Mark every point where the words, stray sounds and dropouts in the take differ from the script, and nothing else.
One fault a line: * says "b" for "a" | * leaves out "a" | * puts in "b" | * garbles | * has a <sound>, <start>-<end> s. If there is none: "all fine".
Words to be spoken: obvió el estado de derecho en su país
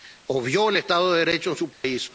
* has a dropout, 1.7-1.8 s